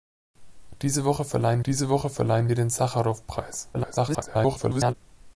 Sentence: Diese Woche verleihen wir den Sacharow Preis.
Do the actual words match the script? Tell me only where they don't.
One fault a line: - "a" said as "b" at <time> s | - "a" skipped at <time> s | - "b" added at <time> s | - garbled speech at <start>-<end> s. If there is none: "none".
- "diese Woche verleihen" added at 1.6 s
- garbled speech at 3.7-4.9 s